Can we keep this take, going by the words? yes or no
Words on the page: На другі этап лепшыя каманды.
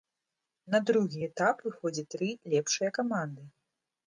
no